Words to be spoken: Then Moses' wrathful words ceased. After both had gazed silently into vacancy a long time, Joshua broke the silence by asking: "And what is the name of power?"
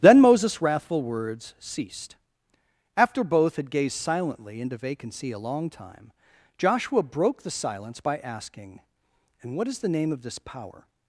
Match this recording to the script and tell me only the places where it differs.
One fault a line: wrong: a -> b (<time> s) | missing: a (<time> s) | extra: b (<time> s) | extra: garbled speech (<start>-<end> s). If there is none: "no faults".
extra: this (10.2 s)